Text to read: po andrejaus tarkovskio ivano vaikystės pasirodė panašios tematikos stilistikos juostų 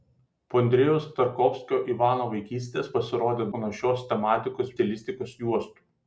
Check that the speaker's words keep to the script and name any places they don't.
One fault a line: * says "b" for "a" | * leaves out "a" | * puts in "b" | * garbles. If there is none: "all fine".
all fine